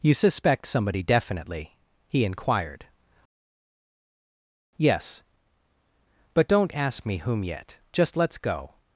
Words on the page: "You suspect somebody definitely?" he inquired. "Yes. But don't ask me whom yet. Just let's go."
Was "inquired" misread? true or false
false